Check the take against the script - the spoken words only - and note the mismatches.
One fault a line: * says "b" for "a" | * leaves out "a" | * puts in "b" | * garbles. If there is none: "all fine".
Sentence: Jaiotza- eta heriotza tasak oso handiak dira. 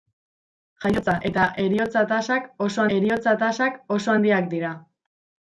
* puts in "heriotza tasak oso"